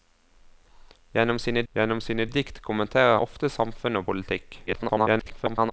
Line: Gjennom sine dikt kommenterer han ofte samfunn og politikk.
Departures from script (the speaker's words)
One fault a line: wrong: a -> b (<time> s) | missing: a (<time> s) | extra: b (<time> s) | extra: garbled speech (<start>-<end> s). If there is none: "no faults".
extra: gjennom sine (1.7 s)
missing: han (3.2 s)
extra: garbled speech (4.7-5.7 s)